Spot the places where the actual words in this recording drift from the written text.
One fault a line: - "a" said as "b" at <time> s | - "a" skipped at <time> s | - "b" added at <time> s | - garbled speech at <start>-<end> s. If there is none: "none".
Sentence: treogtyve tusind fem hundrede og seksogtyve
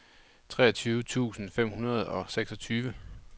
none